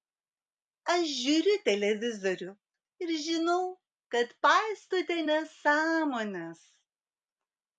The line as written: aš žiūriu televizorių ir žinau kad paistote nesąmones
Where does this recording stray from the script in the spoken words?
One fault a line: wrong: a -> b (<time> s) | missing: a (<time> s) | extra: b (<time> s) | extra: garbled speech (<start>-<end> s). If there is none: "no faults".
no faults